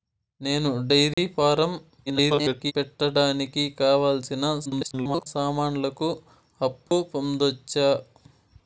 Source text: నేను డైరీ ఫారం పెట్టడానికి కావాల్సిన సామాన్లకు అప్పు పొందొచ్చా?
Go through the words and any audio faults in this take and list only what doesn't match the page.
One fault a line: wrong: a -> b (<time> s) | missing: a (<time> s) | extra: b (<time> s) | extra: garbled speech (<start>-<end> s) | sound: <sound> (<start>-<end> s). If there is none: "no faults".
sound: dropout (1.1-1.2 s)
extra: garbled speech (2.1-2.7 s)
extra: garbled speech (4.6-5.3 s)
sound: dropout (6.9-6.9 s)